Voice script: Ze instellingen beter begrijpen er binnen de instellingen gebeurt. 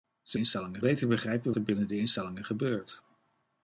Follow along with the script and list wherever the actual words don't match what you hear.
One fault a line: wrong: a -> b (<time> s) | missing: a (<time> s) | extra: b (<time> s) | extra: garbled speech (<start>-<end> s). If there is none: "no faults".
no faults